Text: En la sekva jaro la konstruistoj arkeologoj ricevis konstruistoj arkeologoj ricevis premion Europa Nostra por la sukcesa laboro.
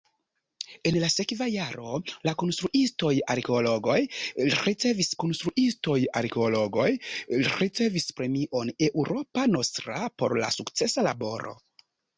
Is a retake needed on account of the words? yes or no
no